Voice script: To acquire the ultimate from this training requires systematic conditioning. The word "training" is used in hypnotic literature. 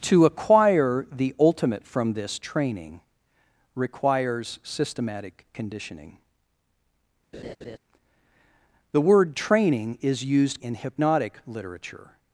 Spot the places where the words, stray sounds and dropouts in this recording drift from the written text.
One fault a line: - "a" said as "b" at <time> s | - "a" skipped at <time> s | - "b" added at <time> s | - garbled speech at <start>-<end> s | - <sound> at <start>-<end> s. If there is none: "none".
- laugh at 7.3-7.8 s